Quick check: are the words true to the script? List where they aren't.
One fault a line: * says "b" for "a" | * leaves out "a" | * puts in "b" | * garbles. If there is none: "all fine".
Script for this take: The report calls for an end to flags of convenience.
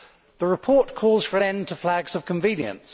all fine